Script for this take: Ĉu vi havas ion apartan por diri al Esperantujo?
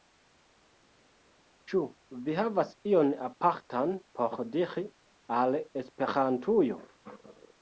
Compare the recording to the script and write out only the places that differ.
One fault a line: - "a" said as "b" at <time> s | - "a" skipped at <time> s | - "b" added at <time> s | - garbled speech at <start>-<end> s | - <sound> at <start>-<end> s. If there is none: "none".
none